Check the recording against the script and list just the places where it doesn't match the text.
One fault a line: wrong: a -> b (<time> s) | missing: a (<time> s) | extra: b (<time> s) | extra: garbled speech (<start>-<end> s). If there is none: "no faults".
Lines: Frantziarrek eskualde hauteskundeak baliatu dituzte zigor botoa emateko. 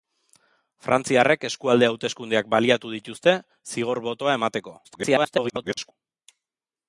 extra: garbled speech (4.8-5.9 s)